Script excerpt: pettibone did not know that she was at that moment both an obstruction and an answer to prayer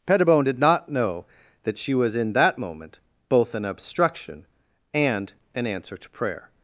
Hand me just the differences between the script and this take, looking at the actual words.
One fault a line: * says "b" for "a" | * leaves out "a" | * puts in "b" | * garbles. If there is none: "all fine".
* says "in" for "at"